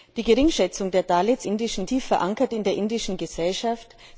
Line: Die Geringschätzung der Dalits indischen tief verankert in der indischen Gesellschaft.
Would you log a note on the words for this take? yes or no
no